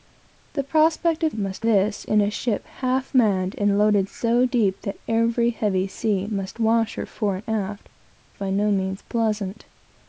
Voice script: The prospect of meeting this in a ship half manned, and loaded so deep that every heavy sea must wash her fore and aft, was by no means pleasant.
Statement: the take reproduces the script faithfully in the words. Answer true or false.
false